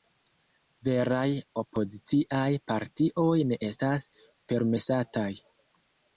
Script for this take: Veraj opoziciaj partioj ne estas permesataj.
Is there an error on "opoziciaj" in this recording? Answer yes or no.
no